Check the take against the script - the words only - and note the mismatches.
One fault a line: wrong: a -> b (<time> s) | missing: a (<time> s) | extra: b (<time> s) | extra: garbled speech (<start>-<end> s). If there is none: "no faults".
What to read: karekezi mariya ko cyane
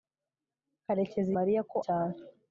no faults